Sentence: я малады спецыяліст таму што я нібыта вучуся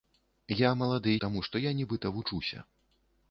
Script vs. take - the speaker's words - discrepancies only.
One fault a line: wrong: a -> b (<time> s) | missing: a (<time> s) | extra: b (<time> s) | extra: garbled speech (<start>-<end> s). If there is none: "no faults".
missing: спецыяліст (1.1 s)